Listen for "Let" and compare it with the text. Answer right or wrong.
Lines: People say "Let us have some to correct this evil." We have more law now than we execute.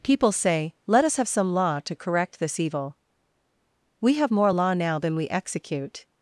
right